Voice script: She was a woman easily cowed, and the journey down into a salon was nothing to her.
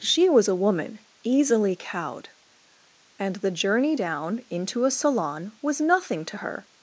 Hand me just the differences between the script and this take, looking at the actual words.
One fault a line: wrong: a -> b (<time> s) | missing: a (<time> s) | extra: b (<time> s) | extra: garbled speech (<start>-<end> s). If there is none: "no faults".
no faults